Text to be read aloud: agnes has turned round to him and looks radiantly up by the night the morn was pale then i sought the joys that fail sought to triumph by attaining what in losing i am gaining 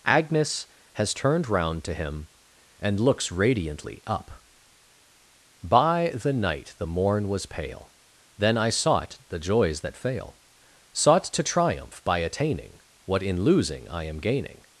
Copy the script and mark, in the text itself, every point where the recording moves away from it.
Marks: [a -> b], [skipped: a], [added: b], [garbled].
agnes has turned round to him and looks radiantly up by the night the morn was pale then i sought the joys that fail sought to triumph by attaining what in losing i am gaining